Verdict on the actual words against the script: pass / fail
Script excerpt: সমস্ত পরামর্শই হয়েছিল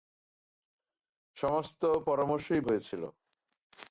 pass